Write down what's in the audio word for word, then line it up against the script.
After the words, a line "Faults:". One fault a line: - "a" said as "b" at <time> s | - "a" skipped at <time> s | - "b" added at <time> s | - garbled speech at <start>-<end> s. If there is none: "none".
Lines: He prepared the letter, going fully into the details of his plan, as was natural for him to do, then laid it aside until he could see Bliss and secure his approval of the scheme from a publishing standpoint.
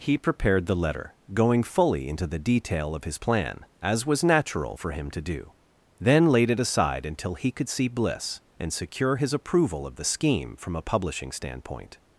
He prepared the letter, going fully into the detail of his plan, as was natural for him to do, then laid it aside until he could see Bliss and secure his approval of the scheme from a publishing standpoint.
Faults:
- "details" said as "detail" at 2.4 s